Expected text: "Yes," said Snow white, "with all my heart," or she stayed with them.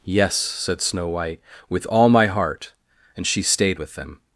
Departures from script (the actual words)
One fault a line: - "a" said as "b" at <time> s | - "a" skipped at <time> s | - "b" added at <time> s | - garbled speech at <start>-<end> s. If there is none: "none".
- "or" said as "and" at 3.2 s